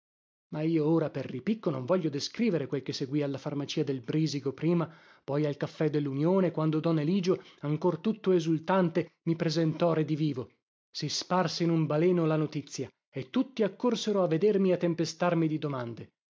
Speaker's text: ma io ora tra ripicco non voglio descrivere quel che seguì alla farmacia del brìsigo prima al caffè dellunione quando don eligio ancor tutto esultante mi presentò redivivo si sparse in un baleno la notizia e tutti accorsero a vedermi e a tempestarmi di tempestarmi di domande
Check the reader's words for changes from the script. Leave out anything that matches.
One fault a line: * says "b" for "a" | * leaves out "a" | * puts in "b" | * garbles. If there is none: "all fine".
* says "per" for "tra"
* puts in "poi"
* leaves out "tempestarmi di"